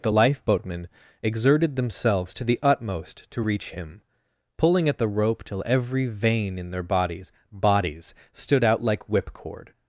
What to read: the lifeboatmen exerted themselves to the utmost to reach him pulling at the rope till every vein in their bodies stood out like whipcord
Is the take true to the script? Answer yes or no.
no